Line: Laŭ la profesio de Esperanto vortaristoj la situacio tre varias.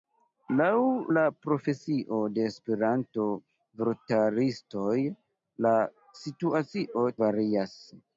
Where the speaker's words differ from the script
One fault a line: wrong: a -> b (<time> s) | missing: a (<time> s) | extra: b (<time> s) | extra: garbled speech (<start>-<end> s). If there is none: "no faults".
missing: tre (7.1 s)